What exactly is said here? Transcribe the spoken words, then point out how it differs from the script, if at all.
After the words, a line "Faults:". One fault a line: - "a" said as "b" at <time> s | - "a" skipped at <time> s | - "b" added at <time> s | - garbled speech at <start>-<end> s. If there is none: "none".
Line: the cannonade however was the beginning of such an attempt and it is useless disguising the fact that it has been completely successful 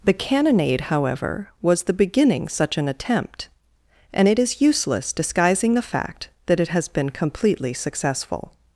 the cannonade however was the beginning such an attempt and it is useless disguising the fact that it has been completely successful
Faults:
- "of" skipped at 2.5 s